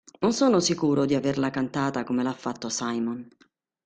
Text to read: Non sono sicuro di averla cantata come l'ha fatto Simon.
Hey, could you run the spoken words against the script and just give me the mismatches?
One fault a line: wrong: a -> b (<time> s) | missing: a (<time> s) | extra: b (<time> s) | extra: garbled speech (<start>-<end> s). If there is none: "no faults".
no faults